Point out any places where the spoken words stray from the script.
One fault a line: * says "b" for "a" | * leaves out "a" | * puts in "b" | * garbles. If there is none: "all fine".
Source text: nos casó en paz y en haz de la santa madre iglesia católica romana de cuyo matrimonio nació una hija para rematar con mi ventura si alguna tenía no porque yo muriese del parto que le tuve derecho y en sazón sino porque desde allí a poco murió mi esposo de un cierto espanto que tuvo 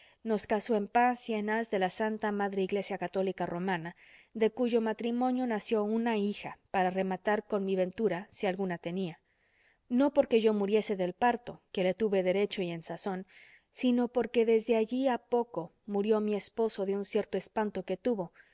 all fine